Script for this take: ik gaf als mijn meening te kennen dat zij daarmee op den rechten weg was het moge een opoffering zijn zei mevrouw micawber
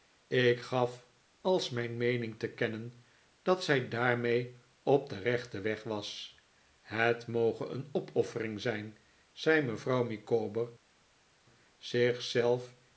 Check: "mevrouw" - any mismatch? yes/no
no